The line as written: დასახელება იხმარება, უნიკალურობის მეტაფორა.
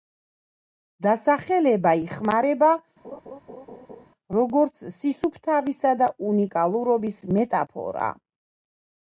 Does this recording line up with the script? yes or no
no